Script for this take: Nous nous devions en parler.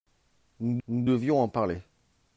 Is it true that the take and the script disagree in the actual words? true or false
false